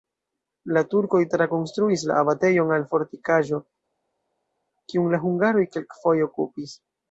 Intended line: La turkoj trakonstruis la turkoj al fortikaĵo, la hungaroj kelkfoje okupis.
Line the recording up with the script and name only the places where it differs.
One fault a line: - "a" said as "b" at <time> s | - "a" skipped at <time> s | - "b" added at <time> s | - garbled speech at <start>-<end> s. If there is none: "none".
- "turkoj" said as "abatejon" at 2.2 s
- "kiun" added at 4.9 s